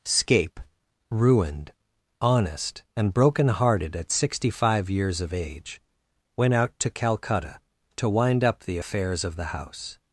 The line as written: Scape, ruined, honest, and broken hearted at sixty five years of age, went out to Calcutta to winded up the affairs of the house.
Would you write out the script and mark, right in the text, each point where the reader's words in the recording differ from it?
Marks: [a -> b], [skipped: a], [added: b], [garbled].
Scape, ruined, honest, and broken hearted at sixty five years of age, went out to Calcutta to [winded -> wind] up the affairs of the house.